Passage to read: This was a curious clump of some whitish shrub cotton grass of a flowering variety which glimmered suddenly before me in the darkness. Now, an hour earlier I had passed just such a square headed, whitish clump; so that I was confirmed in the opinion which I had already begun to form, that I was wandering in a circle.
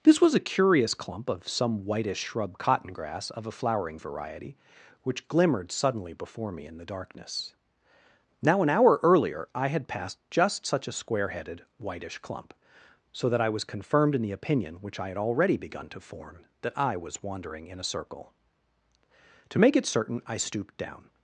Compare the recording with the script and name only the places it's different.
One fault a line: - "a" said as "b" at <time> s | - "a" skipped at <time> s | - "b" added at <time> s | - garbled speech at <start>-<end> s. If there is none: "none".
- "To make it certain I stooped down" added at 19.5 s